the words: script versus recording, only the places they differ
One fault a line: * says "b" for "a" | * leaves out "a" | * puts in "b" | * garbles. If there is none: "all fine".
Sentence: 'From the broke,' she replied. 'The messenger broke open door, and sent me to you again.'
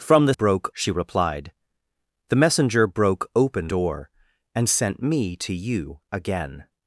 all fine